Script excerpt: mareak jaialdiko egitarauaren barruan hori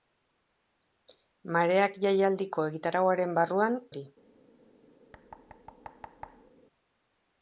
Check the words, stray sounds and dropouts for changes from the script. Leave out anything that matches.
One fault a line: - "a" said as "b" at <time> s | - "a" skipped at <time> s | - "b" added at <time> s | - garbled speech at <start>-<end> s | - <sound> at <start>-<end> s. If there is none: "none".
- thud at 5.1-6.5 s